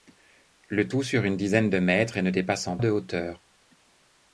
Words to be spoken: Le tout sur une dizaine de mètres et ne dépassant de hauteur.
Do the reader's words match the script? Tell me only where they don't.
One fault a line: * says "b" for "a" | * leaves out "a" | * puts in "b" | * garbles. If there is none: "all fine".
all fine